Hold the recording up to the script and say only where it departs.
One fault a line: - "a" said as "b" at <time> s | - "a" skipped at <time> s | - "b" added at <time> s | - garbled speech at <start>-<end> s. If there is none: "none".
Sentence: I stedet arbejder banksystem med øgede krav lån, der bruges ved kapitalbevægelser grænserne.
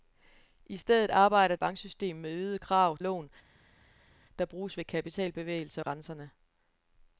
none